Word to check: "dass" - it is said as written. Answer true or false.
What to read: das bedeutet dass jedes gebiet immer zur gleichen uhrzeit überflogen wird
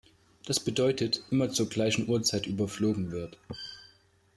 false